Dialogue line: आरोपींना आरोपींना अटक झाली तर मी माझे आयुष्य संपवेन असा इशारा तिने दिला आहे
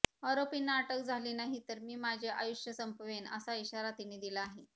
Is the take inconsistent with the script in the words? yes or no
yes